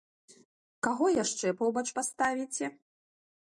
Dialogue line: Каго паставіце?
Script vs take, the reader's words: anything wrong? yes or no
yes